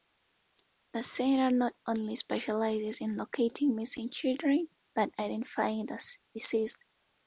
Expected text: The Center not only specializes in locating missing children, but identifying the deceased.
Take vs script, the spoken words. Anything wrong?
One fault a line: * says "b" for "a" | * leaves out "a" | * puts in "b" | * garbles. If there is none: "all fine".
all fine